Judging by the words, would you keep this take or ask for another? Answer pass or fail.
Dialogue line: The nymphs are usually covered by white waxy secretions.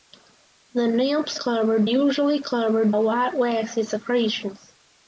fail